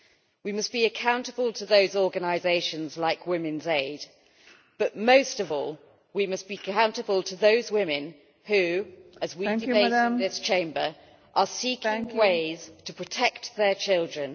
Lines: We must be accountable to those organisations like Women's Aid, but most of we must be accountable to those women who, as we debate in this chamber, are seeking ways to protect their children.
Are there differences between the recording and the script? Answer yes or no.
yes